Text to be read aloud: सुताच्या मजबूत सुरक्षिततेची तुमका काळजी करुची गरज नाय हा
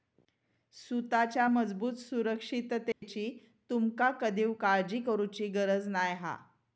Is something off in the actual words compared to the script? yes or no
yes